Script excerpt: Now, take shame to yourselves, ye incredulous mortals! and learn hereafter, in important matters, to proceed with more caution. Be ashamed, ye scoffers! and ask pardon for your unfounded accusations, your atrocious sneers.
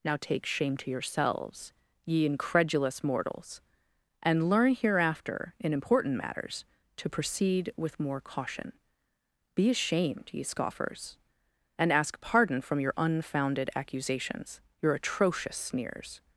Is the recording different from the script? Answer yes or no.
yes